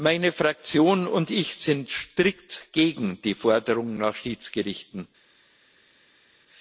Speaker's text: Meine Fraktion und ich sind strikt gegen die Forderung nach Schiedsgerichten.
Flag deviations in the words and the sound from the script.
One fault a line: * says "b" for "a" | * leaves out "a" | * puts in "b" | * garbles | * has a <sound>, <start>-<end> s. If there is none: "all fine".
all fine